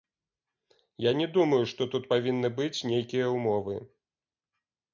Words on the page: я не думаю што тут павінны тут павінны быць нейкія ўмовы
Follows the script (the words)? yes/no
no